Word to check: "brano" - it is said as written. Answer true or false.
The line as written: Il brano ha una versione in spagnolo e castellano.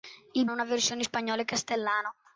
false